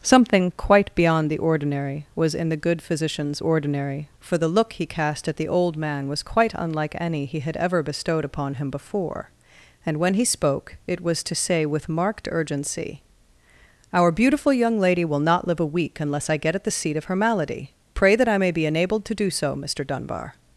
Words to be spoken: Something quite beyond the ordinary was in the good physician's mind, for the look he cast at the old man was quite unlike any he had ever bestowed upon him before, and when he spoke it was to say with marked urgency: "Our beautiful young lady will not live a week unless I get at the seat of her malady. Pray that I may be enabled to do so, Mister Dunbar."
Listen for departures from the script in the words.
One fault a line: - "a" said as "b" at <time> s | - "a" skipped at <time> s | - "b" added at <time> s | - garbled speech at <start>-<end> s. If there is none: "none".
- "mind" said as "ordinary" at 3.4 s